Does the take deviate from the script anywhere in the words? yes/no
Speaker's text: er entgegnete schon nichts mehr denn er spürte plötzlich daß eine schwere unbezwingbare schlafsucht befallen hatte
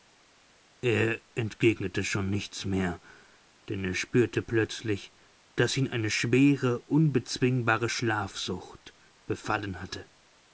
yes